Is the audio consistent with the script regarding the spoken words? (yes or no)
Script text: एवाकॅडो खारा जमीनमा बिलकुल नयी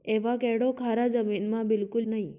yes